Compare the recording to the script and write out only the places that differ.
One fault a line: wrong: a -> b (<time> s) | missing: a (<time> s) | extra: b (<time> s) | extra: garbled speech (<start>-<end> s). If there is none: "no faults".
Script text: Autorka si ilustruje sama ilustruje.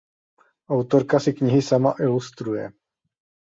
wrong: ilustruje -> knihy (1.3 s)